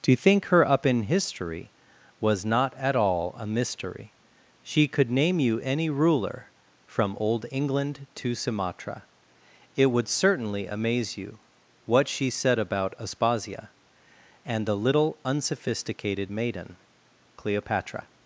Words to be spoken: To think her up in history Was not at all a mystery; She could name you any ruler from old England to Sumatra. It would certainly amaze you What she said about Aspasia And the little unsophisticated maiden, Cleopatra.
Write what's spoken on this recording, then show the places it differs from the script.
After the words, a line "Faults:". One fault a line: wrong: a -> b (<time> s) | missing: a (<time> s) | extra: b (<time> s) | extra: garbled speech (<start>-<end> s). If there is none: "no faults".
To think her up in history Was not at all a mystery; She could name you any ruler from old England to Sumatra. It would certainly amaze you What she said about Aspasia And the little unsophisticated maiden, Cleopatra.
Faults:
no faults